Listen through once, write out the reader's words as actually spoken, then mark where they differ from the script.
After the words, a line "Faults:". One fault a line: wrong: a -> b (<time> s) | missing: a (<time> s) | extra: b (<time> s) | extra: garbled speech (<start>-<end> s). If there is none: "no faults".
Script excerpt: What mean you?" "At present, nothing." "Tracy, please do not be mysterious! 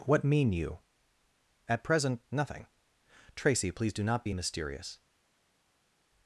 What mean you?" "At present, nothing." "Tracy, please do not be mysterious!
Faults:
no faults